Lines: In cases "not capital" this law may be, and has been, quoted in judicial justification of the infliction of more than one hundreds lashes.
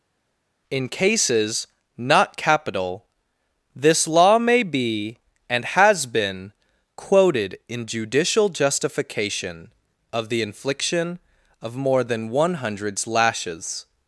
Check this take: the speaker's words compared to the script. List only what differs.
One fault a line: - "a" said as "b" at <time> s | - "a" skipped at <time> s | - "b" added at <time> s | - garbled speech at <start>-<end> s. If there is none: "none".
none